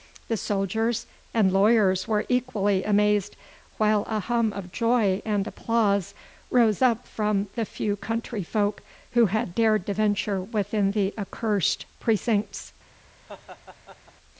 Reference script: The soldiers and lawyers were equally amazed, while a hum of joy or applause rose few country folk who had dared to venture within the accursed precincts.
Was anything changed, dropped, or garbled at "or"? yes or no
yes